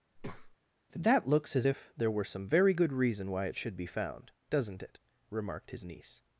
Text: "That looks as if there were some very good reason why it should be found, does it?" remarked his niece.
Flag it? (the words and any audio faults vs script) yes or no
yes